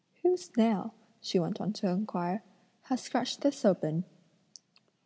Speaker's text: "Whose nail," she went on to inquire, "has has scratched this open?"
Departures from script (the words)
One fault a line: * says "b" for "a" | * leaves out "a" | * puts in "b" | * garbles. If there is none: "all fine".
* leaves out "has"